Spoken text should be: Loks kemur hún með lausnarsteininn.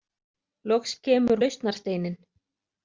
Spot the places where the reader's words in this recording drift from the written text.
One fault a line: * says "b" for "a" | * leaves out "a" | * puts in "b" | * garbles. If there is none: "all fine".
* leaves out "hún með"